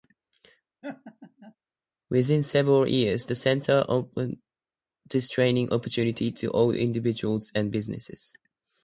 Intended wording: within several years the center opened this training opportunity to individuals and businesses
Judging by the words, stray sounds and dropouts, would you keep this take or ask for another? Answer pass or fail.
fail